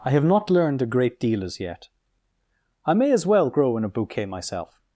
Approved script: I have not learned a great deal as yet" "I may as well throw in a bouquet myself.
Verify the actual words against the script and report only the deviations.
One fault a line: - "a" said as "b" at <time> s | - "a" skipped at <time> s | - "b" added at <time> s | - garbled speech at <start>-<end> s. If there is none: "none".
- "throw" said as "grow" at 3.5 s